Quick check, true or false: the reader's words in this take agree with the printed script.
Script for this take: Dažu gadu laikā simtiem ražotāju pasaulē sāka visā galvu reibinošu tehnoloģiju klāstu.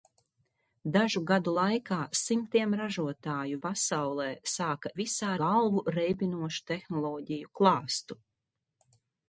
true